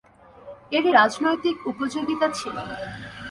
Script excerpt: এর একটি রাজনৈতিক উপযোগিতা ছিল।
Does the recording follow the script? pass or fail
fail